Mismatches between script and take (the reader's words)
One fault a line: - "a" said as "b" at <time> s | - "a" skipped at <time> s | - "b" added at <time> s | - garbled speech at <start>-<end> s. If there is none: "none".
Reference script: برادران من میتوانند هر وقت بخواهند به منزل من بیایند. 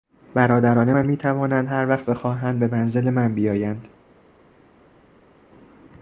none